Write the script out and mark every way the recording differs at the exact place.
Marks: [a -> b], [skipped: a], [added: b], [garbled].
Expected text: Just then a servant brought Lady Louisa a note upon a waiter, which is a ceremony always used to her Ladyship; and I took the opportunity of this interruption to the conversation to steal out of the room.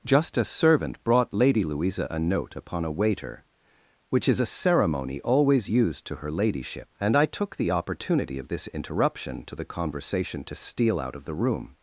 Just [skipped: then] a servant brought Lady Louisa a note upon a waiter, which is a ceremony always used to her Ladyship; and I took the opportunity of this interruption to the conversation to steal out of the room.